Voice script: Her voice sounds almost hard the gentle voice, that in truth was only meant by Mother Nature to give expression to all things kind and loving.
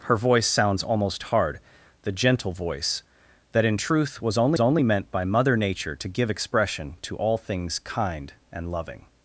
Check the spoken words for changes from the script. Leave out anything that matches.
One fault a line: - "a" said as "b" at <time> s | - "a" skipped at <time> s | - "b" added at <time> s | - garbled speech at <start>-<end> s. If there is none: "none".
- "only" added at 4.6 s